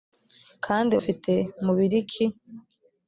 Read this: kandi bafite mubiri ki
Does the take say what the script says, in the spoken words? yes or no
yes